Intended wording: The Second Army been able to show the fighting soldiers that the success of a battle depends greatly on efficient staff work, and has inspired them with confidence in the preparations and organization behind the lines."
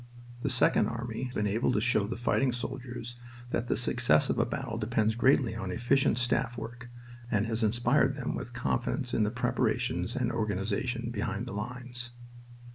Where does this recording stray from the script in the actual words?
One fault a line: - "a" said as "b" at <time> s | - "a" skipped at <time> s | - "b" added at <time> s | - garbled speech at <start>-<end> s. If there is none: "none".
none